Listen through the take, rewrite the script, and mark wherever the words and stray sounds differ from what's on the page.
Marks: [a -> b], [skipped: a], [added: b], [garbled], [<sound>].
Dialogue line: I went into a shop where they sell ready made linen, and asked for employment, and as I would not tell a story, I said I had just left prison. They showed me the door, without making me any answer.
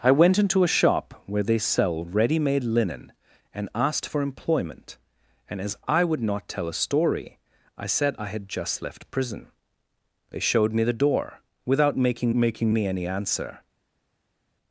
I went into a shop where they sell ready made linen, and asked for employment, and as I would not tell a story, I said I had just left prison. They showed me the door, without making [added: making] me any answer.